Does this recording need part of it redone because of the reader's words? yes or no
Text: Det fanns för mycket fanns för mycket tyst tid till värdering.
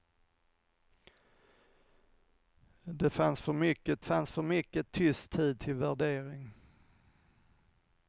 no